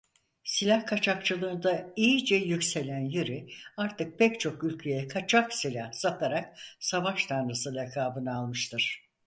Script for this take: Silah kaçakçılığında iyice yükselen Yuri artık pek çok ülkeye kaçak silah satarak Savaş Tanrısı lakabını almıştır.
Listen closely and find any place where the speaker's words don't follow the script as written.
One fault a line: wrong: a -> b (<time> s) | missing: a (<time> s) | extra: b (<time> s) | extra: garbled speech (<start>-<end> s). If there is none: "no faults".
no faults